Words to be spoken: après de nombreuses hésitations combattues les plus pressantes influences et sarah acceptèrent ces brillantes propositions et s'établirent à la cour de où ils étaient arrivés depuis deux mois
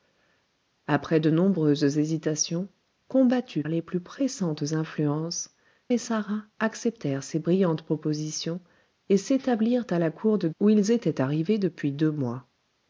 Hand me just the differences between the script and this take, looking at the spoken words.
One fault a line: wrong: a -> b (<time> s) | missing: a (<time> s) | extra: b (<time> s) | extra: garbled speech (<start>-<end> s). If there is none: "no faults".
no faults